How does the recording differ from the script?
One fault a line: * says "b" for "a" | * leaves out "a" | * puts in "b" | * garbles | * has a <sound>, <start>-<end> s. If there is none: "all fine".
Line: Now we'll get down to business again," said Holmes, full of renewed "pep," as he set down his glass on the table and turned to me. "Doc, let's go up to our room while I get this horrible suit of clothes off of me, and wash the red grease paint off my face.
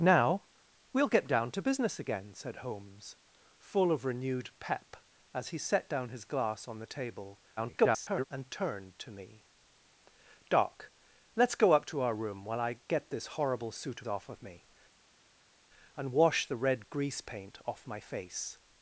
* garbles
* leaves out "of clothes"